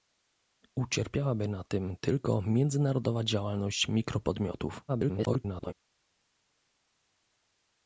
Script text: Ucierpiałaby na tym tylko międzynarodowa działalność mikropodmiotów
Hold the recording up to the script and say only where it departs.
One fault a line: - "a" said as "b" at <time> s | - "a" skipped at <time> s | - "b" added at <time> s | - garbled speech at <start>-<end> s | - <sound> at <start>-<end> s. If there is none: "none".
- garbled speech at 4.9-5.7 s